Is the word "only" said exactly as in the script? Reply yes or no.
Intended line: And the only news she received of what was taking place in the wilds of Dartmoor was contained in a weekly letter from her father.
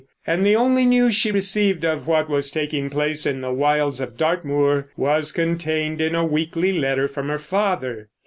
yes